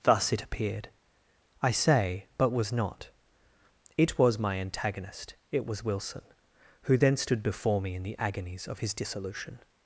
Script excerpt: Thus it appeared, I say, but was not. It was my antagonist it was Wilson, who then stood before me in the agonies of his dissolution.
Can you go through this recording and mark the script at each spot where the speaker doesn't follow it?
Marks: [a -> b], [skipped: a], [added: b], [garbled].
Thus it appeared, I say, but was not. It was my antagonist it was Wilson, who then stood before me in the agonies of his dissolution.